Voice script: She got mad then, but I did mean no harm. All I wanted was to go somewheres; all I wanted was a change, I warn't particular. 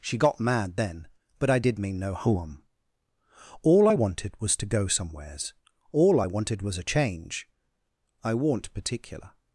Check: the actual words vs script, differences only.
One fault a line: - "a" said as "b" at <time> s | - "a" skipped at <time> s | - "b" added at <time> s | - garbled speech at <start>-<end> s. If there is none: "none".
none